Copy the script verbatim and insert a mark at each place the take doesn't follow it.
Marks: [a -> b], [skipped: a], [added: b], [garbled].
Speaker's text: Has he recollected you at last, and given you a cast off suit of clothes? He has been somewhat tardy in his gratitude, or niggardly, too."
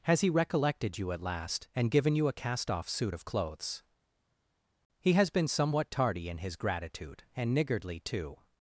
Has he recollected you at last, and given you a cast off suit of clothes? He has been somewhat tardy in his gratitude, [or -> and] niggardly, too."